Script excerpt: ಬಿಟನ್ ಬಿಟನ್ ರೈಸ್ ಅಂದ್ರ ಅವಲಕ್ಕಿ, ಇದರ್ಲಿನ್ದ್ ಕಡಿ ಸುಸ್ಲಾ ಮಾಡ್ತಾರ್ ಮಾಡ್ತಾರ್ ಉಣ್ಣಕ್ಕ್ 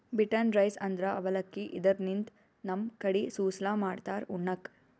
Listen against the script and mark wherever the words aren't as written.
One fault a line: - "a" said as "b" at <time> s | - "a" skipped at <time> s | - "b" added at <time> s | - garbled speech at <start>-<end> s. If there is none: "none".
- "ಬಿಟನ್" skipped at 0.5 s
- "ನಮ್" added at 2.6 s
- "ಮಾಡ್ತಾರ್" skipped at 4.3 s